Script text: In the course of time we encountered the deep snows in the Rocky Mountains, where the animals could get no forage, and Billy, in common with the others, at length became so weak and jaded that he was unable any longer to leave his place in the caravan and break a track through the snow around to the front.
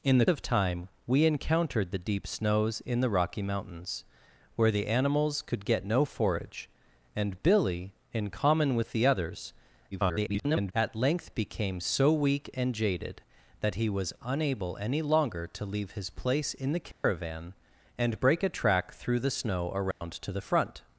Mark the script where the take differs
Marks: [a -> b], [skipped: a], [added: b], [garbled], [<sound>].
In the [skipped: course] of time we encountered the deep snows in the Rocky Mountains, where the animals could get no forage, and Billy, in common with the others, [garbled] at length became so weak and jaded that he was unable any longer to leave his place in the caravan [dropout] and break a track through the snow around [dropout] to the front.